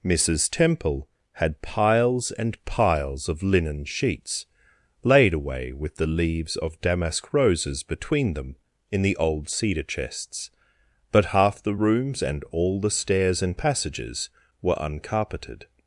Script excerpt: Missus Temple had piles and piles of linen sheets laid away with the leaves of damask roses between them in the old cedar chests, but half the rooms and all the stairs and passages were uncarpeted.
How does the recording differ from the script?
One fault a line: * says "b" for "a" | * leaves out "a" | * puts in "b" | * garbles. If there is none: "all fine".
all fine